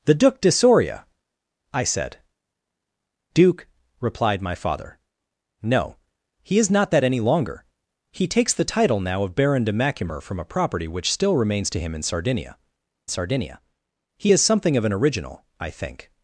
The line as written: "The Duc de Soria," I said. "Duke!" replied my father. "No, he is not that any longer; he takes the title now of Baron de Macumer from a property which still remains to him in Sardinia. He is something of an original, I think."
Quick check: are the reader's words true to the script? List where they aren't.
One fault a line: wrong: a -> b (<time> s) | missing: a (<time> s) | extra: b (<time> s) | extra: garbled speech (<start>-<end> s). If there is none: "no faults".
extra: Sardinia (13.1 s)